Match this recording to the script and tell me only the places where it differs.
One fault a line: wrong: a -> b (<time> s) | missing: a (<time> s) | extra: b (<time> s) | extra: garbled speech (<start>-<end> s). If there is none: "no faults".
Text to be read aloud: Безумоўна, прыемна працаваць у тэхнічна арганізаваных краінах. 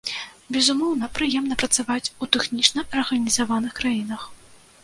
no faults